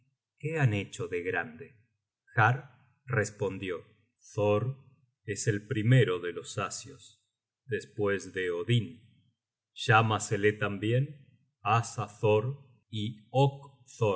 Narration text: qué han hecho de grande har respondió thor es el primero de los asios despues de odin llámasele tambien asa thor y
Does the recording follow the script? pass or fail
pass